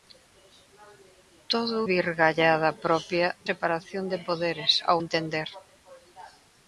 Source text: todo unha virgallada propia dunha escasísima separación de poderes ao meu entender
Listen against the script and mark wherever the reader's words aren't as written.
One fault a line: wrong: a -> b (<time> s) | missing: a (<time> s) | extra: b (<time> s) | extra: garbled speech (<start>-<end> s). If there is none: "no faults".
missing: unha (1.8 s)
missing: dunha escasísima (3.3 s)
missing: meu (5.0 s)